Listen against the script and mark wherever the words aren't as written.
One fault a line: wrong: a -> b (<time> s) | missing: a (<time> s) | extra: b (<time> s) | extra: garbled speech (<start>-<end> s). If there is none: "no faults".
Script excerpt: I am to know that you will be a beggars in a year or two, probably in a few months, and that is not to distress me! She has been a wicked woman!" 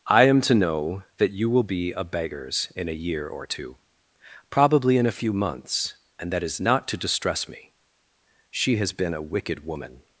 no faults